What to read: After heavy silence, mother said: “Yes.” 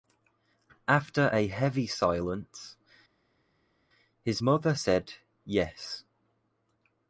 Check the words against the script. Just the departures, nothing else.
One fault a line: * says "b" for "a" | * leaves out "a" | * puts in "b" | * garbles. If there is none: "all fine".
* puts in "a"
* puts in "his"